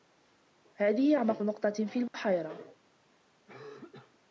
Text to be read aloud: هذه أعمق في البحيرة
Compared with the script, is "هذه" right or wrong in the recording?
right